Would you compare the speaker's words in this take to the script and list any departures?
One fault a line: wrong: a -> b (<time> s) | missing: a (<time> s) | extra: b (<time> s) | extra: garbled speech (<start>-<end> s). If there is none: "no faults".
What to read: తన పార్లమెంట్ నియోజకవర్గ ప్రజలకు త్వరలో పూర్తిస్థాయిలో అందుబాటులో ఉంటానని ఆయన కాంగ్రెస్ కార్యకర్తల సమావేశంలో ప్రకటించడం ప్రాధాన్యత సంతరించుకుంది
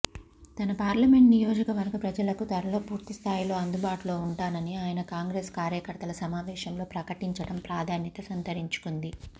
no faults